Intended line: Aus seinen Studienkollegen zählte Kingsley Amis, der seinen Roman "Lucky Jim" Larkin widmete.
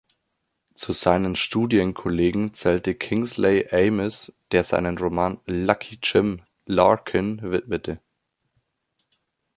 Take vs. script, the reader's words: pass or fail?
fail